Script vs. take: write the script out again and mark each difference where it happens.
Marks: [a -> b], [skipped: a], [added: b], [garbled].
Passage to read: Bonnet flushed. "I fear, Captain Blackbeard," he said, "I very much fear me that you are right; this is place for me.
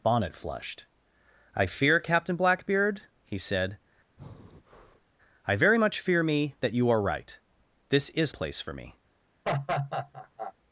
Bonnet flushed. "I fear, Captain Blackbeard," he said, "I very much fear me that you are right; this is place for me.